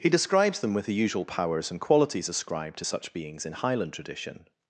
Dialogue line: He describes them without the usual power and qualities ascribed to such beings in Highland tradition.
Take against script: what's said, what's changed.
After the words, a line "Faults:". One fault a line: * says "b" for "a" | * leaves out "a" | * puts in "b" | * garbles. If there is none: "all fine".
He describes them with the usual powers and qualities ascribed to such beings in Highland tradition.
Faults:
* says "with" for "without"
* says "powers" for "power"